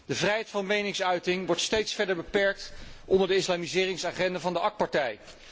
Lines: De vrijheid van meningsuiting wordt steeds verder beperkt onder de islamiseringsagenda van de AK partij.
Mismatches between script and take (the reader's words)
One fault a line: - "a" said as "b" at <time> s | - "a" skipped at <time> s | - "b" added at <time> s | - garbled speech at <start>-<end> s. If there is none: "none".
none